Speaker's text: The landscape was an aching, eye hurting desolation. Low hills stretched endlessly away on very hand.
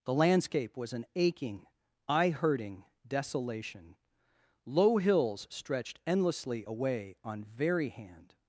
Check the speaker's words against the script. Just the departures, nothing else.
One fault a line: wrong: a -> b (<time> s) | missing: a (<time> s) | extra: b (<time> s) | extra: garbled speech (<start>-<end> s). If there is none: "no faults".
no faults